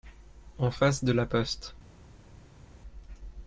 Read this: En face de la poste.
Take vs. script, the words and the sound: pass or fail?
pass